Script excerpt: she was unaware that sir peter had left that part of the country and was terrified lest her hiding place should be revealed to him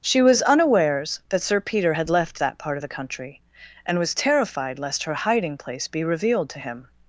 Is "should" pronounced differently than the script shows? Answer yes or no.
yes